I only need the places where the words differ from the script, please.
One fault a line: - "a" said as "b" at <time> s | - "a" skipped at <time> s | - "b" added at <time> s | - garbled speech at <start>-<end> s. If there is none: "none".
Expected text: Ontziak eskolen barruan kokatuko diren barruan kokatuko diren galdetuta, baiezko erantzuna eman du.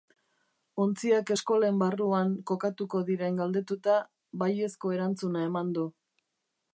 - "barruan kokatuko diren" skipped at 3.4 s